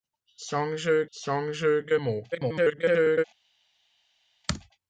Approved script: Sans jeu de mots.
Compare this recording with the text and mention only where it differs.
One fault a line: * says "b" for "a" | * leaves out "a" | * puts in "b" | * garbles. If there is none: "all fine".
* puts in "sans jeu"
* garbles